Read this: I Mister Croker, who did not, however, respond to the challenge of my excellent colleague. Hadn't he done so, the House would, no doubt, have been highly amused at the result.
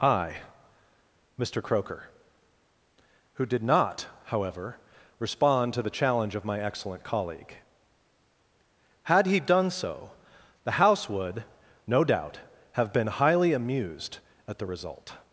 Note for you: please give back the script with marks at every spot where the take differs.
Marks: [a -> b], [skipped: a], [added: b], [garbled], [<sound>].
I Mister Croker, who did not, however, respond to the challenge of my excellent colleague. [Hadn't -> Had] he done so, the House would, no doubt, have been highly amused at the result.